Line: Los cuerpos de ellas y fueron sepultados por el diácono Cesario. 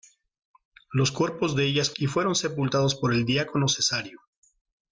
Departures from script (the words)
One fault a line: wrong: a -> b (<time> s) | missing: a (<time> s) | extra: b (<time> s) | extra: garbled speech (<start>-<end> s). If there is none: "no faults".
no faults